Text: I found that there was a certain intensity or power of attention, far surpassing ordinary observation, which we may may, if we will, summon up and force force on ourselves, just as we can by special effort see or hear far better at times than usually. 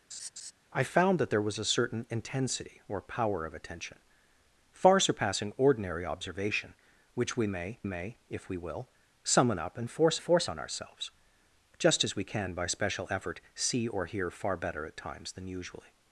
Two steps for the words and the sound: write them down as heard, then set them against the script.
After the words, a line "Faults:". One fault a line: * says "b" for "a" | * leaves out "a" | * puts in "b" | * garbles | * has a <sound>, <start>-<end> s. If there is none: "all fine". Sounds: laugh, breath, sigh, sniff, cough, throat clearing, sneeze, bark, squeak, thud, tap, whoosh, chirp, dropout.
I found that there was a certain intensity or power of attention, far surpassing ordinary observation, which we may may, if we will, summon up and force force on ourselves, just as we can by special effort see or hear far better at times than usually.
Faults:
* has a laugh, 0.1-0.5 s